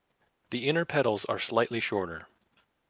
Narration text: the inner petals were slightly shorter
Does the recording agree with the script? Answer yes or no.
no